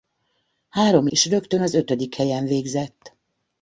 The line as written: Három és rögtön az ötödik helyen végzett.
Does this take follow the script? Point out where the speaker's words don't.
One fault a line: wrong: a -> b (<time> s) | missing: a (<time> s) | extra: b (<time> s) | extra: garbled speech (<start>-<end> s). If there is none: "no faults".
no faults